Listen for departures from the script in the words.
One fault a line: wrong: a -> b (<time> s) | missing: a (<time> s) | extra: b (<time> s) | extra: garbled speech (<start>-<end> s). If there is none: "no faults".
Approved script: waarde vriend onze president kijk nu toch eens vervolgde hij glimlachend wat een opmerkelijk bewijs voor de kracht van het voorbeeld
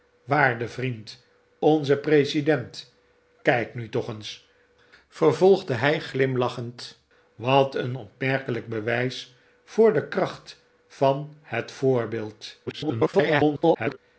extra: garbled speech (12.7-14.0 s)